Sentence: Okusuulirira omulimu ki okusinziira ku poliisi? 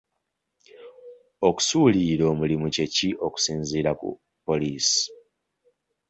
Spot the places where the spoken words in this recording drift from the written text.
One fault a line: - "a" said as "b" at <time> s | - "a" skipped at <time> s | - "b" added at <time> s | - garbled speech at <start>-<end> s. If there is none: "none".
- "kye" added at 2.7 s